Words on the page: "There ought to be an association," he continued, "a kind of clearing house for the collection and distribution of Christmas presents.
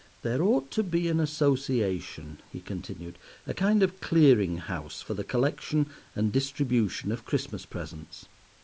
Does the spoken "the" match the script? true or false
true